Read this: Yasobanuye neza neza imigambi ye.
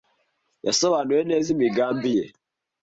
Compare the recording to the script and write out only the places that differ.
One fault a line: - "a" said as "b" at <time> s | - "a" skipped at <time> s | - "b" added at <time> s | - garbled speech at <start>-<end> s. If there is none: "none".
- "neza" skipped at 1.5 s